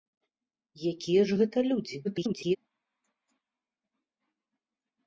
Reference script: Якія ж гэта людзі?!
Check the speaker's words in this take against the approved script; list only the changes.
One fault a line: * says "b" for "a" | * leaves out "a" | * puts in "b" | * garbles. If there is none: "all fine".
* garbles